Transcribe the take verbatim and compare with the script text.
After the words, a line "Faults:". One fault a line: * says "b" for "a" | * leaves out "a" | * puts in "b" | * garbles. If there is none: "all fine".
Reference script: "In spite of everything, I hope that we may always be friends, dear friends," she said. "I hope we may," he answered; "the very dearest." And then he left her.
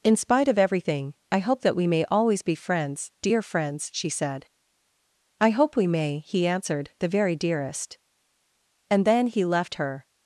"In spite of everything, I hope that we may always be friends, dear friends," she said. "I hope we may," he answered; "the very dearest." And then he left her.
Faults:
all fine